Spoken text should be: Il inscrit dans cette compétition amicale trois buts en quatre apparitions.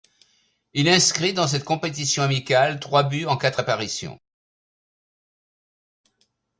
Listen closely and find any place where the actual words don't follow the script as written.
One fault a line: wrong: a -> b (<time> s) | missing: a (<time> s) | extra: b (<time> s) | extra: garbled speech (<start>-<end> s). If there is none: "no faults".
no faults